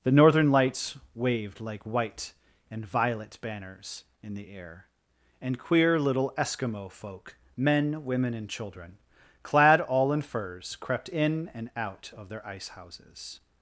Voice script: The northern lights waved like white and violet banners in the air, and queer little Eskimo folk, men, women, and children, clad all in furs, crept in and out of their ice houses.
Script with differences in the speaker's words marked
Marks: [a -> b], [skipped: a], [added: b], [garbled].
The northern lights waved like white and violet banners in the air, and queer little Eskimo folk, men, women, and children, clad all in furs, crept in and out of their ice houses.